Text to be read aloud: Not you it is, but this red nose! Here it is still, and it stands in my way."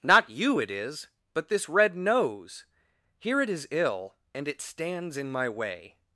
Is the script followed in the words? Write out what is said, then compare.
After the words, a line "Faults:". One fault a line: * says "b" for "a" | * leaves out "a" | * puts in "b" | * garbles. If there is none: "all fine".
Not you it is, but this red nose! Here it is ill, and it stands in my way."
Faults:
* says "ill" for "still"